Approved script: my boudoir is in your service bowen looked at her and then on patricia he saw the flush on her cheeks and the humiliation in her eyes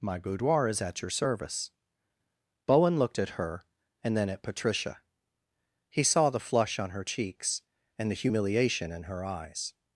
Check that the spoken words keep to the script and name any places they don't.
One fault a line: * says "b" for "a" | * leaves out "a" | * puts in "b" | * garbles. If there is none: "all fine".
* says "at" for "in"
* says "at" for "on"